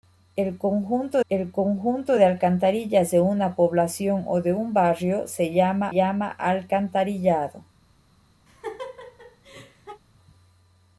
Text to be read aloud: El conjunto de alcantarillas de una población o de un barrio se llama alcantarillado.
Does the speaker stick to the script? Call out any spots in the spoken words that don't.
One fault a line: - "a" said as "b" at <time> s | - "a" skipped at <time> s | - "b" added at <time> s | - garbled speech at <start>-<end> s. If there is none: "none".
- "el conjunto" added at 1.3 s
- "llama" added at 5.9 s